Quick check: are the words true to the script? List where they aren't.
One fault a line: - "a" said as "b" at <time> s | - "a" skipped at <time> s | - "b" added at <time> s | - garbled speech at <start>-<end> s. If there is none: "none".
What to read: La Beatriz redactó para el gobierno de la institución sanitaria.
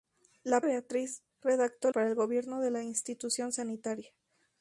none